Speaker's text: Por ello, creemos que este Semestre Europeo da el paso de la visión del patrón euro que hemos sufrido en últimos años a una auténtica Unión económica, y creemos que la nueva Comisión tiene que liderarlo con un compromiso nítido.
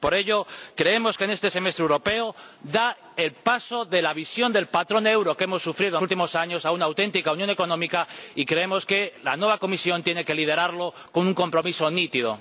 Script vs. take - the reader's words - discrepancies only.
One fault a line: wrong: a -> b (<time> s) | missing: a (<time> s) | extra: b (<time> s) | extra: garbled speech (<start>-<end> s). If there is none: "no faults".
no faults